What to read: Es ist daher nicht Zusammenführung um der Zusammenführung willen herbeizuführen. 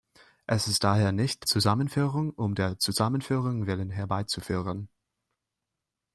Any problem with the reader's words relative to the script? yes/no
no